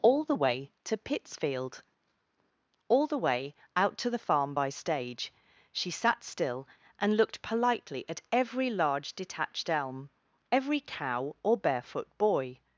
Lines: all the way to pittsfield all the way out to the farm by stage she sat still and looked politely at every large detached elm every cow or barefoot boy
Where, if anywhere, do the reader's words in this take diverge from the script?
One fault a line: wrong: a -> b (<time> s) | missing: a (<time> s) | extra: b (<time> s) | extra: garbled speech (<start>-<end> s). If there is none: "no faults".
no faults